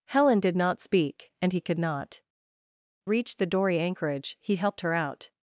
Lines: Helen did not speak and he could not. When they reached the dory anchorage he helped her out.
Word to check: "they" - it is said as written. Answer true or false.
false